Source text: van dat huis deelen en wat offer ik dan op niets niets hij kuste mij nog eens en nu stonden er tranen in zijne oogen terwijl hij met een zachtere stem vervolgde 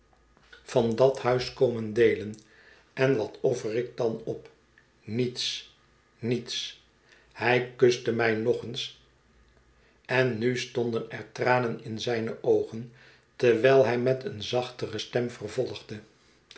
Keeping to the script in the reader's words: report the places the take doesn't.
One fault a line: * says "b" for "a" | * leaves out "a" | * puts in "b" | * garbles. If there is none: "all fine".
* puts in "komen"